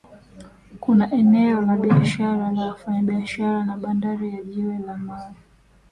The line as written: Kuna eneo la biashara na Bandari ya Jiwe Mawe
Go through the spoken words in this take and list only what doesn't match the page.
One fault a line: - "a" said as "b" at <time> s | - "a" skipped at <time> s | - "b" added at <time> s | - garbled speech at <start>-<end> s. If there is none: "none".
- "la wafanyabiashara" added at 2.5 s
- "la" added at 4.8 s